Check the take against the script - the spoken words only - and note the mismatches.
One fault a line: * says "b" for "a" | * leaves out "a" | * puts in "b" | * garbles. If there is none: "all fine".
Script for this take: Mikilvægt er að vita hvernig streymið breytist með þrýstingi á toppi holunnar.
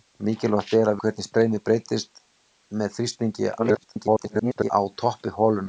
* leaves out "vita"
* garbles